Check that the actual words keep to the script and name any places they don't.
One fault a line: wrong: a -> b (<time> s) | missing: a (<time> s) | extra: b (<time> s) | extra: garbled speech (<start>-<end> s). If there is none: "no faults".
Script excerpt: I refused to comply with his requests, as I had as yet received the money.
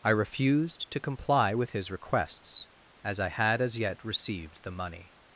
no faults